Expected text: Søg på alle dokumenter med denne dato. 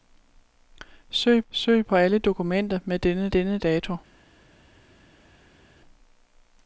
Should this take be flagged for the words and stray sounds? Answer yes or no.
yes